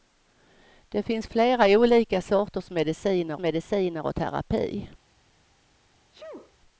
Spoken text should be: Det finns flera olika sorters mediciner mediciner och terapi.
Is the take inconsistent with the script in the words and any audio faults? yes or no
yes